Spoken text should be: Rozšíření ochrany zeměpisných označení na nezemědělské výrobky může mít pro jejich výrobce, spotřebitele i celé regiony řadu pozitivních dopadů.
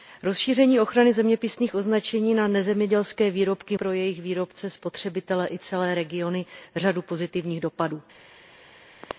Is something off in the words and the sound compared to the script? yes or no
yes